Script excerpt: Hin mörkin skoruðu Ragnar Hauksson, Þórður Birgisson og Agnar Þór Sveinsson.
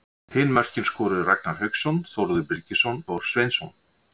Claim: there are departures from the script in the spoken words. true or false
true